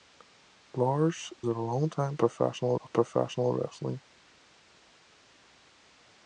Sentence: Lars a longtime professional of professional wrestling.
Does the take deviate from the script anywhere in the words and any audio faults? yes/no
no